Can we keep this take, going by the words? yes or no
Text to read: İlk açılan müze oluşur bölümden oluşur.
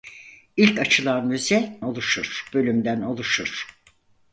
yes